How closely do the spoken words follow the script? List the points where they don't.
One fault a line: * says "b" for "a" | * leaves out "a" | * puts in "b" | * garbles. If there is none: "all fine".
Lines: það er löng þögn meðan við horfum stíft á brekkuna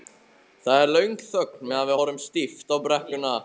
all fine